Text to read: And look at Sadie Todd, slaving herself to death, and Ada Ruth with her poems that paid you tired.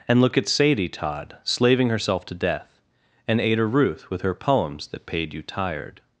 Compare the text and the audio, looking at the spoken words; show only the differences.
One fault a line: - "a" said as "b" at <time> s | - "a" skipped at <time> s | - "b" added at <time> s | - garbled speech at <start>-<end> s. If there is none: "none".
none